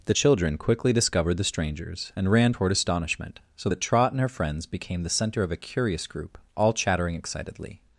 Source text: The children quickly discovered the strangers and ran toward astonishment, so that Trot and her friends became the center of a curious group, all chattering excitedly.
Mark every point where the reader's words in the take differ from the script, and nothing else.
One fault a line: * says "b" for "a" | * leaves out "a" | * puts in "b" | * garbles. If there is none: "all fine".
all fine